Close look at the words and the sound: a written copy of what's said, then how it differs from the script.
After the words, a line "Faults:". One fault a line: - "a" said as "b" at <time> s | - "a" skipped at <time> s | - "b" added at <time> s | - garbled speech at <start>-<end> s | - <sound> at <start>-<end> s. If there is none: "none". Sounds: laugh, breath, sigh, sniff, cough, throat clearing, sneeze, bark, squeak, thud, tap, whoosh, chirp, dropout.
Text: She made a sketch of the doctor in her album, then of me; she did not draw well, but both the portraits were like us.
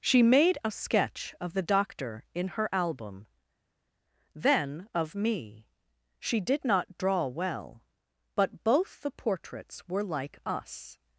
She made a sketch of the doctor in her album, then of me; she did not draw well, but both the portraits were like us.
Faults:
none